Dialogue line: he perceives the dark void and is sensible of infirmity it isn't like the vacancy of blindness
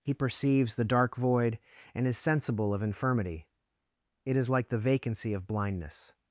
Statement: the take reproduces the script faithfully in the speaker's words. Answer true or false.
false